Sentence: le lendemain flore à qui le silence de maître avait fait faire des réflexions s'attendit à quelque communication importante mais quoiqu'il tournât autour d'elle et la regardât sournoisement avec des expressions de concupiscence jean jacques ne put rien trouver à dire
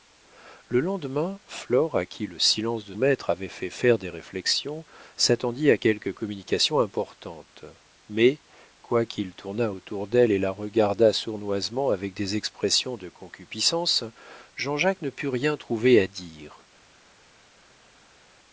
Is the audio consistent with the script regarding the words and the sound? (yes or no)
yes